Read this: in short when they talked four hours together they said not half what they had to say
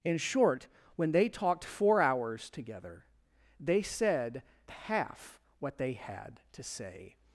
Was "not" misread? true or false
true